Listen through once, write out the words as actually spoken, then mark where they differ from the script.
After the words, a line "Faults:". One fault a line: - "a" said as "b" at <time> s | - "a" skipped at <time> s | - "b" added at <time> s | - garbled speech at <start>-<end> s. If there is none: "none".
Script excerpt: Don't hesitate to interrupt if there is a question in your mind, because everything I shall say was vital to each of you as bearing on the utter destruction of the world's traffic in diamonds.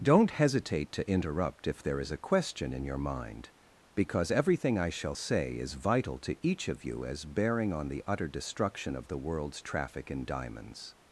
Don't hesitate to interrupt if there is a question in your mind, because everything I shall say is vital to each of you as bearing on the utter destruction of the world's traffic in diamonds.
Faults:
- "was" said as "is" at 5.5 s